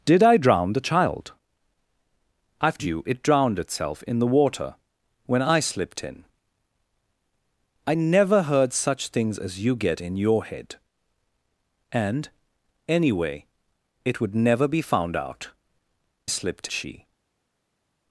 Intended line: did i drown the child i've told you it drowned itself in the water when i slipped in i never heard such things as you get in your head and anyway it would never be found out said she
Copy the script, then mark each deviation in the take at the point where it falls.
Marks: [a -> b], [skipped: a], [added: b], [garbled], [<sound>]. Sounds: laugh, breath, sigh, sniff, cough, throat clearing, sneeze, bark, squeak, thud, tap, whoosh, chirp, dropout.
did i drown the child i've [skipped: told] you it drowned itself in the water when i slipped in i never heard such things as you get in your head and anyway it would never be found out [said -> slipped] she